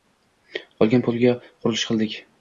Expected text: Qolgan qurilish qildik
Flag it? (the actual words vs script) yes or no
yes